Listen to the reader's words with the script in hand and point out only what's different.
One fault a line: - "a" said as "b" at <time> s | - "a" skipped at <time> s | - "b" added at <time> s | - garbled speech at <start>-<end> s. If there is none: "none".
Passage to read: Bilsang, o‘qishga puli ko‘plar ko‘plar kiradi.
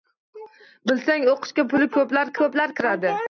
none